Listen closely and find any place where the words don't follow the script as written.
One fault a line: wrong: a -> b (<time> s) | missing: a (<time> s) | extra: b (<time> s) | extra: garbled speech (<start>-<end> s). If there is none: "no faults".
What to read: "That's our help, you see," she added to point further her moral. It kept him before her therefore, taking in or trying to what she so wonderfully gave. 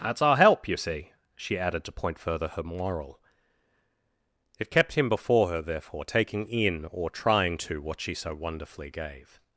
no faults